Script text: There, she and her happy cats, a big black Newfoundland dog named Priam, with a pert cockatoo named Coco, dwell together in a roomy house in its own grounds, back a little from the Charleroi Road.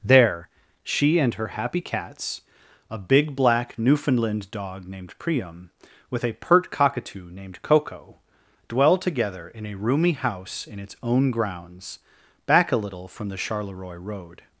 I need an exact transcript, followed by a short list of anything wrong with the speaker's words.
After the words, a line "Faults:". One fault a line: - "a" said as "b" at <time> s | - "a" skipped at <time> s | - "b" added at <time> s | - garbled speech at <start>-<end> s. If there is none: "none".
There, she and her happy cats, a big black Newfoundland dog named Priam, with a pert cockatoo named Coco, dwell together in a roomy house in its own grounds, back a little from the Charleroi Road.
Faults:
none